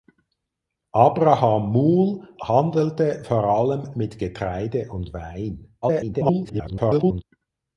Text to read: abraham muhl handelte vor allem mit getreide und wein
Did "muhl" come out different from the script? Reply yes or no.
no